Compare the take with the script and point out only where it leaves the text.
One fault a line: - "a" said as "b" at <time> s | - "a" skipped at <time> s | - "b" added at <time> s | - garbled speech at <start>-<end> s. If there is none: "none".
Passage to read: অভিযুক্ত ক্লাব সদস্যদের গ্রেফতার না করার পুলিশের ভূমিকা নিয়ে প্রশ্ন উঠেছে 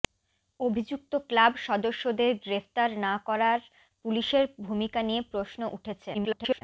- garbled speech at 6.1-6.6 s